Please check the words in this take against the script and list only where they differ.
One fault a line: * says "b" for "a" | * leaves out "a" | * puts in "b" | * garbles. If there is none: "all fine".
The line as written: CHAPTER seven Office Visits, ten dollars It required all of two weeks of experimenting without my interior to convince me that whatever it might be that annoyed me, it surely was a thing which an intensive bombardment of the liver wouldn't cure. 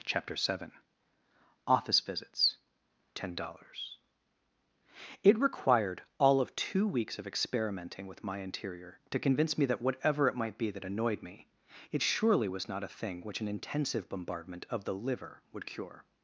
* says "with" for "without"
* puts in "not"
* says "would" for "wouldn't"